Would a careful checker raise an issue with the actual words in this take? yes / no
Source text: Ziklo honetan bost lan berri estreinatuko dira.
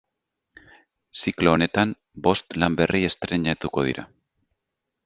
no